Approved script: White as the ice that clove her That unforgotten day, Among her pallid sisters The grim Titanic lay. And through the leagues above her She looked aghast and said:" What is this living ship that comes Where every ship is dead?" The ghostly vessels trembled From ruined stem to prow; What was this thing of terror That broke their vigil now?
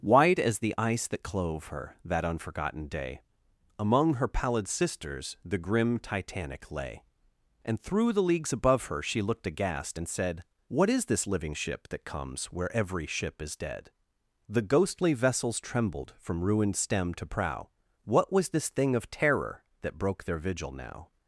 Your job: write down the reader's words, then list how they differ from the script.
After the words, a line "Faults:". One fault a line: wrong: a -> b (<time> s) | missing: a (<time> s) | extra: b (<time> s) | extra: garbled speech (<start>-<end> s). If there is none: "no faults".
White as the ice that clove her That unforgotten day, Among her pallid sisters The grim Titanic lay. And through the leagues above her She looked aghast and said:" What is this living ship that comes Where every ship is dead?" The ghostly vessels trembled From ruined stem to prow; What was this thing of terror That broke their vigil now?
Faults:
no faults